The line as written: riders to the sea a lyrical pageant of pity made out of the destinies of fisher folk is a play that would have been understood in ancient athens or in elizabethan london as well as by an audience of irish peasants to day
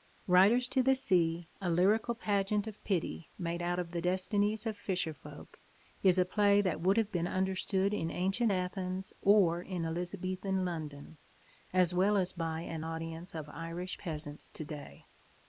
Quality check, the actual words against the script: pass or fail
pass